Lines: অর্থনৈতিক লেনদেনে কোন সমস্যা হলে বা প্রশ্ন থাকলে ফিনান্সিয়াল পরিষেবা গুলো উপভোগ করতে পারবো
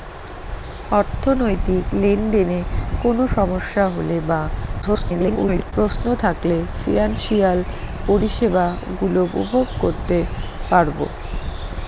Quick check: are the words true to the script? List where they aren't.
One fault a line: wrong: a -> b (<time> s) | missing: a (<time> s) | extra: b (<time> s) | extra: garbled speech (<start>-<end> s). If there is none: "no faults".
extra: garbled speech (4.8-5.7 s)